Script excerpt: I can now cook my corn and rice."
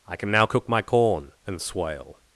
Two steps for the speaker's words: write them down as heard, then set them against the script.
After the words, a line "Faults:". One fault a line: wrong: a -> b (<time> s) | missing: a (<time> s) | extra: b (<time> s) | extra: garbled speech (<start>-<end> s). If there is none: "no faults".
I can now cook my corn and swale."
Faults:
wrong: rice -> swale (1.6 s)